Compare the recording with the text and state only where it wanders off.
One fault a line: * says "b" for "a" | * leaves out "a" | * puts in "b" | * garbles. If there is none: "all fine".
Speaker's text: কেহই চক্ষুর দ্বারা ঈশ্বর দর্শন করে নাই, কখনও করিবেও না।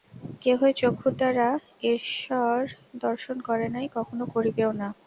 all fine